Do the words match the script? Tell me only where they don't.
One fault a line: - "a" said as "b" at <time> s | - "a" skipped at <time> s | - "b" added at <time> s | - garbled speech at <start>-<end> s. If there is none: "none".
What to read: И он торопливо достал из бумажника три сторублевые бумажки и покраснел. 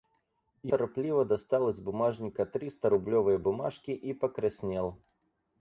- "он" skipped at 0.7 s